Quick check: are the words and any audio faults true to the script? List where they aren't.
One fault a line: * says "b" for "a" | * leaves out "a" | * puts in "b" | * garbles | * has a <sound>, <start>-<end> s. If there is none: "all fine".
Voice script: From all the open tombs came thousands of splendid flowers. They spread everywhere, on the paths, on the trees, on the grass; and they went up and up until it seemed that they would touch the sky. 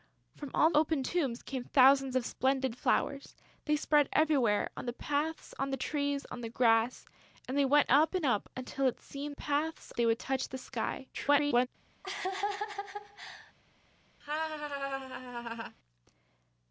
* leaves out "the"
* says "paths" for "that"
* garbles
* has a laugh, 12.0-13.5 s
* has a laugh, 14.2-15.8 s